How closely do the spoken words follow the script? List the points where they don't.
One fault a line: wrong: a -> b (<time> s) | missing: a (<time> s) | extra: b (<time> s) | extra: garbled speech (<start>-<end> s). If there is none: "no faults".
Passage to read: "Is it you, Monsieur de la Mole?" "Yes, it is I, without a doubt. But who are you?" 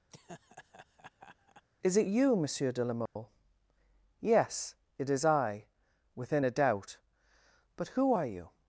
wrong: without -> within (6.1 s)